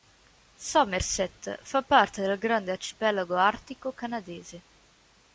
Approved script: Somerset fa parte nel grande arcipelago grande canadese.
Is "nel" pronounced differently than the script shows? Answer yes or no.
yes